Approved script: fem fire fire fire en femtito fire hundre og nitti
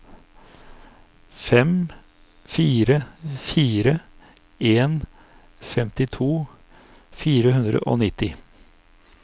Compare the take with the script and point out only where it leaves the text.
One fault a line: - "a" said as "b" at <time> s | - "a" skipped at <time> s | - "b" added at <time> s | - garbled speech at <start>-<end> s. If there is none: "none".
- "fire" skipped at 3.9 s